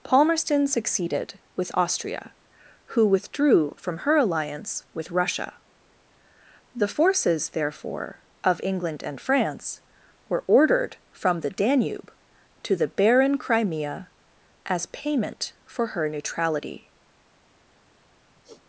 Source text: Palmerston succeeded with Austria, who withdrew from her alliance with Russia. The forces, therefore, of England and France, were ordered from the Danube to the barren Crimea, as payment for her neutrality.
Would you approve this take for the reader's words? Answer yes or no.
yes